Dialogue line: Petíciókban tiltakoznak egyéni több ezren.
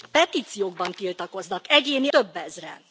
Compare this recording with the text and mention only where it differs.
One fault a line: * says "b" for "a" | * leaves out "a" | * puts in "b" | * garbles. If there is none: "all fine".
all fine